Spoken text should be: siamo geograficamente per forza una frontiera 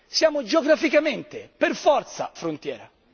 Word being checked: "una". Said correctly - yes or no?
no